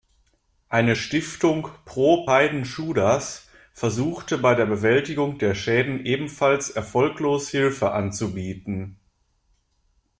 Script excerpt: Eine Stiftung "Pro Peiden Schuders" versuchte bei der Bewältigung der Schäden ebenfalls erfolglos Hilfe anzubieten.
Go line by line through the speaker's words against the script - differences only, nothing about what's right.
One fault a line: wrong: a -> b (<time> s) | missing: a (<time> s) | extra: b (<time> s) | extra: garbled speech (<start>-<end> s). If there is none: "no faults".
no faults